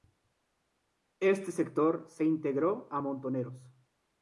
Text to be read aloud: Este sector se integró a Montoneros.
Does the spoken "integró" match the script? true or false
true